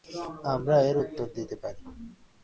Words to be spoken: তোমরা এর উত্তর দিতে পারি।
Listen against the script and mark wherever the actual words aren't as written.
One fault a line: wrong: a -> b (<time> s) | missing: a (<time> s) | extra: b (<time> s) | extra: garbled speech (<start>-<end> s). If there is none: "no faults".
wrong: তোমরা -> আমরা (0.5 s)